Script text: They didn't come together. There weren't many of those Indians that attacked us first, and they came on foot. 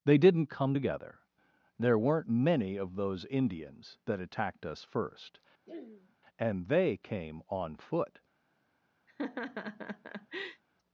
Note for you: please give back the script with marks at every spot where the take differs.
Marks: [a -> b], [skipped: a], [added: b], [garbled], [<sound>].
They didn't come together. There weren't many of those Indians that attacked us first, [throat clearing] and they came on foot. [laugh]